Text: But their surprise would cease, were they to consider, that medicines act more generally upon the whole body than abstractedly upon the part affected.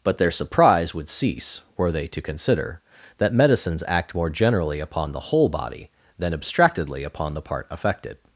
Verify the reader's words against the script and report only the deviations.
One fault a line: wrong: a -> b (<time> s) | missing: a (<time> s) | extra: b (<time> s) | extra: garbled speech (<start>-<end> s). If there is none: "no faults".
no faults